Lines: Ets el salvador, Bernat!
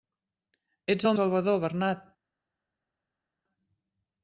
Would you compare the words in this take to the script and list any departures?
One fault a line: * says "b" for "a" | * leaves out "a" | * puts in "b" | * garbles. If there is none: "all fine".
all fine